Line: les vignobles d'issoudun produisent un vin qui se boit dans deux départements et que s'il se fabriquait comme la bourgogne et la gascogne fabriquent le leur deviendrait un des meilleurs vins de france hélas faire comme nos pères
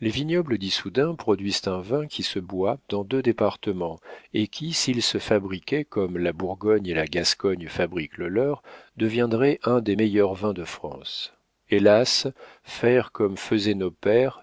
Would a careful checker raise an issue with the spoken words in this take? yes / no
yes